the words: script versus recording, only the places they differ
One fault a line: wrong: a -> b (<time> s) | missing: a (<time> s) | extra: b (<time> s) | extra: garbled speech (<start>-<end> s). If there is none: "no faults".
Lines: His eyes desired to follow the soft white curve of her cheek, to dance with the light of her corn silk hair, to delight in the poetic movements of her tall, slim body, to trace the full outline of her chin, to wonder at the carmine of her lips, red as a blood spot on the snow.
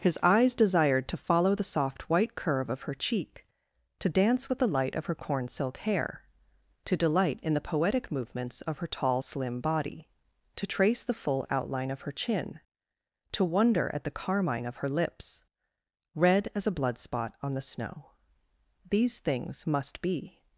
extra: These things must be (18.9 s)